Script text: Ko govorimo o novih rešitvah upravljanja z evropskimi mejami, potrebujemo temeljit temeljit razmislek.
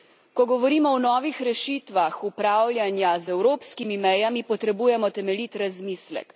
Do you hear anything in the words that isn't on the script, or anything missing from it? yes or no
yes